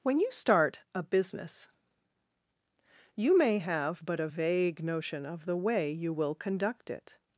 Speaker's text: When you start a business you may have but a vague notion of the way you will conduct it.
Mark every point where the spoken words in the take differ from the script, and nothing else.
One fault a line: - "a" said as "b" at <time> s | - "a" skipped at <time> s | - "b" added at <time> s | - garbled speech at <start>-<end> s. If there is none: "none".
none